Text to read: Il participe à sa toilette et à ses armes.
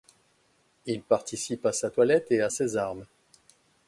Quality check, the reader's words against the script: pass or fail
pass